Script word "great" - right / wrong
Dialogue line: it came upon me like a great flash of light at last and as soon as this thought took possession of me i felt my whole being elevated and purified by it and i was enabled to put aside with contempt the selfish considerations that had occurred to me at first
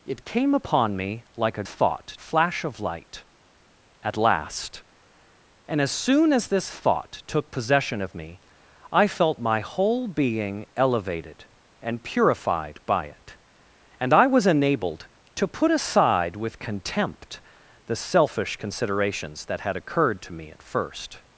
wrong